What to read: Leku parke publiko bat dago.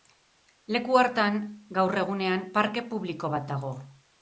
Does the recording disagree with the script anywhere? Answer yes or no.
yes